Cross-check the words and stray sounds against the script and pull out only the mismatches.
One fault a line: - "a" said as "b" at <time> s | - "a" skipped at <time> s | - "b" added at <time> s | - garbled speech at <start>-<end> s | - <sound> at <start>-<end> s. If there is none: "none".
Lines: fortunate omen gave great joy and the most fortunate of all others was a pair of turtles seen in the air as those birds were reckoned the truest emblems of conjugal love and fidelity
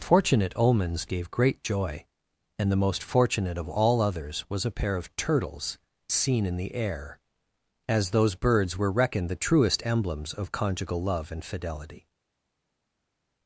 - "omen" said as "omens" at 0.6 s